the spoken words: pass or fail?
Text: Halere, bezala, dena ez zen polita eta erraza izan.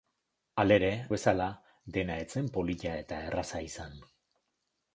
pass